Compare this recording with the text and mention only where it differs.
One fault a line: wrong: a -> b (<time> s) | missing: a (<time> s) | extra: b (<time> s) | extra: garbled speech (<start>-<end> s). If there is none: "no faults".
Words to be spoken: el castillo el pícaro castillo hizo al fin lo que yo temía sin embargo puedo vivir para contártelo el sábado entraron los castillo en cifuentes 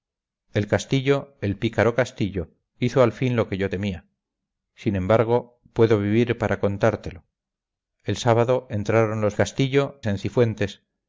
no faults